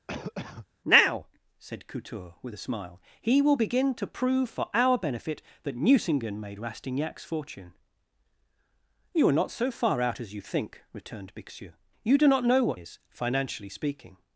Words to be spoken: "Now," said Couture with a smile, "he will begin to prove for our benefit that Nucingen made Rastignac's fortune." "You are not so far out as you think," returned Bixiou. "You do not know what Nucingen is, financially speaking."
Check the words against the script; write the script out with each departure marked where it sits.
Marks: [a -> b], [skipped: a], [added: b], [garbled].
"Now," said Couture with a smile, "he will begin to prove for our benefit that Nucingen made Rastignac's fortune." "You are not so far out as you think," returned Bixiou. "You do not know what [skipped: Nucingen] is, financially speaking."